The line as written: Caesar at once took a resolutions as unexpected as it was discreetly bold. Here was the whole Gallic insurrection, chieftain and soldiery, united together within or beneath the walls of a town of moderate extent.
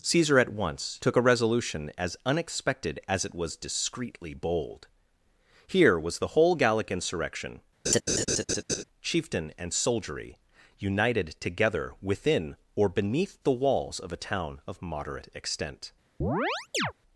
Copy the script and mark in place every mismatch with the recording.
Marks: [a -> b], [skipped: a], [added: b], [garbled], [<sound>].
Caesar at once took a [resolutions -> resolution] as unexpected as it was discreetly bold. Here was the whole Gallic insurrection, [laugh] chieftain and soldiery, united together within or beneath the walls of a town of moderate extent. [chirp]